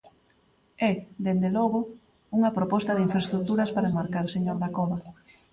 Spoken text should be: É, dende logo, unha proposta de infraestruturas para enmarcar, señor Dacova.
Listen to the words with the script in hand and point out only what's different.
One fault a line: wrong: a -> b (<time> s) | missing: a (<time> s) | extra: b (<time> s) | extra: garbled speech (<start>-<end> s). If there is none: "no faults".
no faults